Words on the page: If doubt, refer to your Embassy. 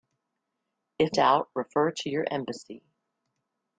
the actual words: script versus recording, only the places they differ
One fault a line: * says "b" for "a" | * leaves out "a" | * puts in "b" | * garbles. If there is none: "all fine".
all fine